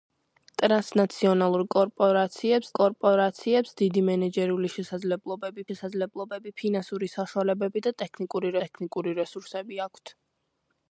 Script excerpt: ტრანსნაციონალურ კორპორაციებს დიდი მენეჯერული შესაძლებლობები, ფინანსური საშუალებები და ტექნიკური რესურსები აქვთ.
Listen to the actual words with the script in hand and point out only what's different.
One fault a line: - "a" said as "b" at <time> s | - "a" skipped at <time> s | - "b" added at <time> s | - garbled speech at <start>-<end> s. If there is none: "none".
- "კორპორაციებს" added at 2.8 s
- "შესაძლებლობები" added at 5.7 s
- "ტექნიკური" added at 8.6 s